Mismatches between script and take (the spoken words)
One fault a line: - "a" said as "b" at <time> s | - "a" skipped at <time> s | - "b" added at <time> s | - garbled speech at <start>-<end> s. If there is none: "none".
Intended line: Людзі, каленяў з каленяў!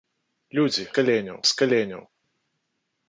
none